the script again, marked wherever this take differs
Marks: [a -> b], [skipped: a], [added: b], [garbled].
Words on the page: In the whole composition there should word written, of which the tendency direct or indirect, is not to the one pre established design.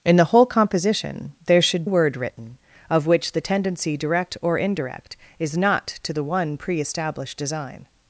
In the whole composition there should word written, of which the tendency direct or indirect, is not to the one pre established design.